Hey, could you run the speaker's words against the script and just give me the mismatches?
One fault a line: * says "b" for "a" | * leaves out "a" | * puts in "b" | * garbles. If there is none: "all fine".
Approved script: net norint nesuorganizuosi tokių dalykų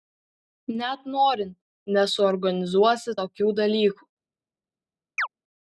all fine